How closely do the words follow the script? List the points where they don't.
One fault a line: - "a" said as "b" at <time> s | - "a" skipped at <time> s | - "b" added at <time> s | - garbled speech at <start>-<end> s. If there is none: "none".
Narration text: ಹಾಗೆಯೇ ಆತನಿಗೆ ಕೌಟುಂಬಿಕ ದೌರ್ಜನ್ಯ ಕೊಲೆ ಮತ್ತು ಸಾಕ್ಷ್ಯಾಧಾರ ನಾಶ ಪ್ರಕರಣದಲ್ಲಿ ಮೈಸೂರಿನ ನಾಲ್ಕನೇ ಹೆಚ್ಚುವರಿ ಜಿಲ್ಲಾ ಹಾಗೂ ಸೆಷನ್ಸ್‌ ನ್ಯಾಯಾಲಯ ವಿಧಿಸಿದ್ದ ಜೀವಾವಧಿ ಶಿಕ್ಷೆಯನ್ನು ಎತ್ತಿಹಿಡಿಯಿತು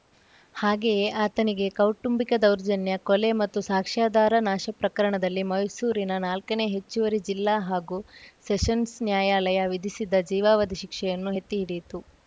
none